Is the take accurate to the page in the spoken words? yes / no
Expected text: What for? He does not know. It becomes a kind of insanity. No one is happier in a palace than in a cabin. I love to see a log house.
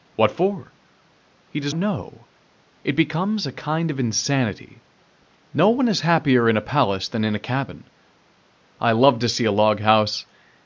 no